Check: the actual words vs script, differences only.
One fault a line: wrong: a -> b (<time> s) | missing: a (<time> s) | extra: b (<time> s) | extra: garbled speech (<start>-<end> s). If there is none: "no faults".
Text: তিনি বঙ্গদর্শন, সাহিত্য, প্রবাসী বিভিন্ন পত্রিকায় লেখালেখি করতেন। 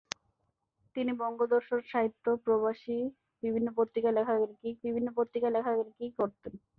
extra: বিভিন্ন পত্রিকায় লেখালেখি (4.8 s)